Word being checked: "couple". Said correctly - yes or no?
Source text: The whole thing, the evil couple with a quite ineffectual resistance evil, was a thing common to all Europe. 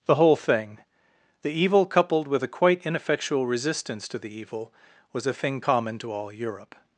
no